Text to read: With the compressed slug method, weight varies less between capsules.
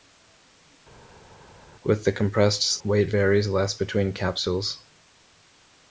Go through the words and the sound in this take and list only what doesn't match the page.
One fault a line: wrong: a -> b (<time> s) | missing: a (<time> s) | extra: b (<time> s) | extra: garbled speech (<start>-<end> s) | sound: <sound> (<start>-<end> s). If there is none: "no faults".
missing: slug method (2.8 s)